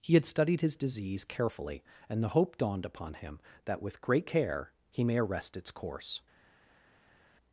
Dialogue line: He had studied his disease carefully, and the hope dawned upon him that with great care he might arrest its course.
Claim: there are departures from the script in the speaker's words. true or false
true